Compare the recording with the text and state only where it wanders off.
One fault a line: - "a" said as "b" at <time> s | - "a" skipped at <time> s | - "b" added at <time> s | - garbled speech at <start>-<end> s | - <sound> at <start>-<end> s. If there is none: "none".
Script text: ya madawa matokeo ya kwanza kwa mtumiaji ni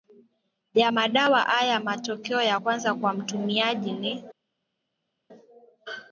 - "haya" added at 1.4 s